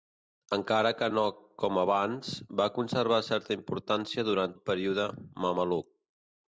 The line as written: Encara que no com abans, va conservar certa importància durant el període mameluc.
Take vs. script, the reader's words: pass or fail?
pass